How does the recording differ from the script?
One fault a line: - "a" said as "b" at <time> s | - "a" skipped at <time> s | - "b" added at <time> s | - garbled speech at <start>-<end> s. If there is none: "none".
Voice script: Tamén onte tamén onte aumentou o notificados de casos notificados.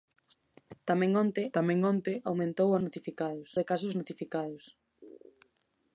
none